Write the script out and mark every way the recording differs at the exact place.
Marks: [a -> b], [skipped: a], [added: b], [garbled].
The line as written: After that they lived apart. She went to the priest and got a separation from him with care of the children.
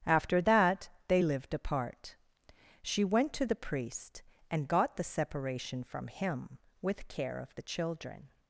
After that they lived apart. She went to the priest and got [a -> the] separation from him with care of the children.